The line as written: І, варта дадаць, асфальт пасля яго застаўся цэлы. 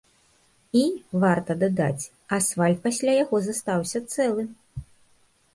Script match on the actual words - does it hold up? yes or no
yes